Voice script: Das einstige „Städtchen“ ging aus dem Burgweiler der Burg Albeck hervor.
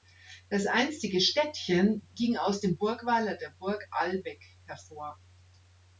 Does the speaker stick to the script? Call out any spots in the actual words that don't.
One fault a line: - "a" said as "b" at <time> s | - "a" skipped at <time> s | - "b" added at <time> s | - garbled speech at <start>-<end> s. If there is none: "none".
none